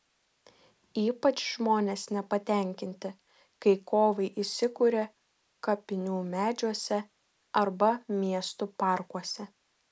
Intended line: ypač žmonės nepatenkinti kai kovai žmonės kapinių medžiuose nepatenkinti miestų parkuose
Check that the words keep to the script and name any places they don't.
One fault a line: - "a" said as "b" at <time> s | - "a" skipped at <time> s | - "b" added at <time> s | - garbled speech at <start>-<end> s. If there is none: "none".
- "žmonės" said as "įsikuria" at 4.5 s
- "nepatenkinti" said as "arba" at 7.6 s